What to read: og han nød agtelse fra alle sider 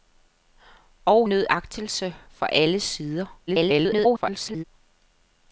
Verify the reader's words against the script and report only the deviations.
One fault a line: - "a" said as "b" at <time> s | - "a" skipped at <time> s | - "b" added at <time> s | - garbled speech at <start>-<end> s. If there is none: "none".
- "han" skipped at 1.3 s
- garbled speech at 3.5-4.6 s